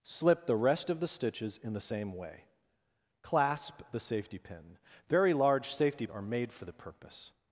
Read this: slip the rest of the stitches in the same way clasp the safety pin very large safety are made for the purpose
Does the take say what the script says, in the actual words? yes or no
yes